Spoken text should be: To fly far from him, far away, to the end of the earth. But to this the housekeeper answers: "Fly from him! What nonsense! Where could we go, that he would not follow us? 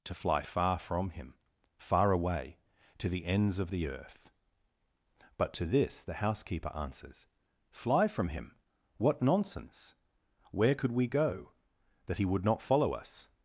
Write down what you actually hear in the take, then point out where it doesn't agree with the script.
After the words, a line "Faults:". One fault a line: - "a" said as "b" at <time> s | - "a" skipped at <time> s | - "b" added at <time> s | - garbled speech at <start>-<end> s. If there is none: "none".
To fly far from him, far away, to the ends of the earth. But to this the housekeeper answers: "Fly from him! What nonsense! Where could we go, that he would not follow us?
Faults:
- "end" said as "ends" at 3.3 s